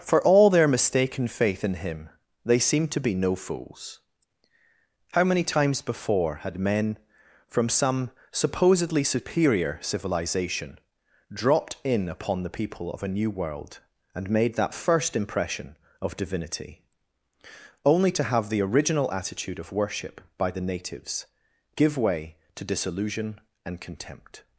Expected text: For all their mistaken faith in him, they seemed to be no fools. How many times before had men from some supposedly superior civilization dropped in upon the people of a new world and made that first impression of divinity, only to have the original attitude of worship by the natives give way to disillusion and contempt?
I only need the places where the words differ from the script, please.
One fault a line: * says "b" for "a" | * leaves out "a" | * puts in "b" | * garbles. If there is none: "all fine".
all fine